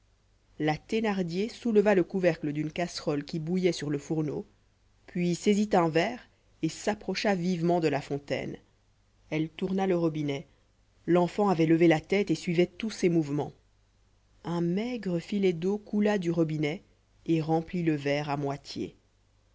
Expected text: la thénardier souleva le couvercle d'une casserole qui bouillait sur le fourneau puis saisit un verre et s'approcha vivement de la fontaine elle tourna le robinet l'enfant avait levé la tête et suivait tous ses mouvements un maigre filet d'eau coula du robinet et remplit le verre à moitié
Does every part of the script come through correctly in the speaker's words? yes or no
yes